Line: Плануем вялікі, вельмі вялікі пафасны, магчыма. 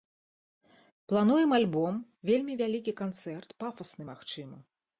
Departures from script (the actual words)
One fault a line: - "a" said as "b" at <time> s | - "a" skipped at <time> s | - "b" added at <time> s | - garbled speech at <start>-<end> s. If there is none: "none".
- "вялікі" said as "альбом" at 1.6 s
- "канцэрт" added at 3.0 s